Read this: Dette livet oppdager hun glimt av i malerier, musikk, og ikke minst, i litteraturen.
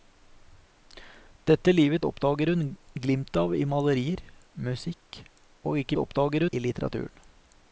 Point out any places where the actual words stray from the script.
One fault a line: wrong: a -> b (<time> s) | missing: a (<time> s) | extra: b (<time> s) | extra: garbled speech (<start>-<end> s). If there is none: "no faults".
wrong: minst -> oppdager (6.0 s)